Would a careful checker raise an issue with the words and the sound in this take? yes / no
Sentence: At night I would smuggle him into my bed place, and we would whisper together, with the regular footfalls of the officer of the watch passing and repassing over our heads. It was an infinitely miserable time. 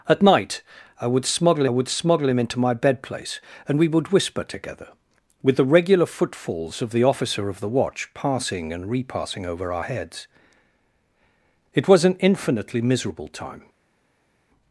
yes